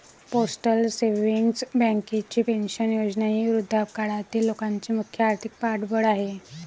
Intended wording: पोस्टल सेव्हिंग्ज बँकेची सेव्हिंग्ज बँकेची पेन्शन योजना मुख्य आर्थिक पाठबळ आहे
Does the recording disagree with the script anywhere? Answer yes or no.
yes